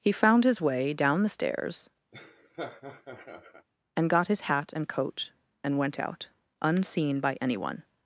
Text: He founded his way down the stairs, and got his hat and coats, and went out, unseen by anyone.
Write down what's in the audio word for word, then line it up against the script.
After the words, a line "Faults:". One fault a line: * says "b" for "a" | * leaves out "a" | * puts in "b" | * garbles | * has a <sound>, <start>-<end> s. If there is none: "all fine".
He found his way down the stairs, and got his hat and coat, and went out, unseen by anyone.
Faults:
* says "found" for "founded"
* has a laugh, 2.1-3.7 s
* says "coat" for "coats"